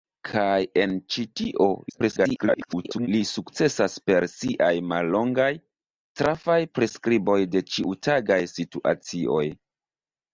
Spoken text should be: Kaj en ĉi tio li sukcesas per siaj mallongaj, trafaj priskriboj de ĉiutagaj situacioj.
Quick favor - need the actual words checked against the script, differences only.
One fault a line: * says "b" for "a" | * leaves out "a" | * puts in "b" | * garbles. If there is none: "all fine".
* garbles